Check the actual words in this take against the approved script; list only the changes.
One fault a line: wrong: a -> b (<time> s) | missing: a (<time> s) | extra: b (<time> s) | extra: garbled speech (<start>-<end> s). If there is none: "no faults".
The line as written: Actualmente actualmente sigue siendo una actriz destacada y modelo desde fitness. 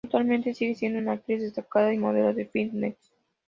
missing: actualmente (0.6 s)
wrong: desde -> de (2.3 s)